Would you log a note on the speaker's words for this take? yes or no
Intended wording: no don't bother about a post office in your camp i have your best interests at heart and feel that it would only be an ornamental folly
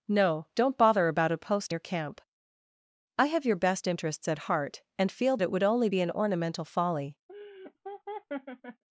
yes